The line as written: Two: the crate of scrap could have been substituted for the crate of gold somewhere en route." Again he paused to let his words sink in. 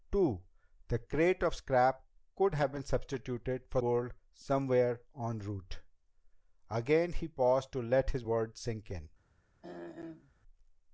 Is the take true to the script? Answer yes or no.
no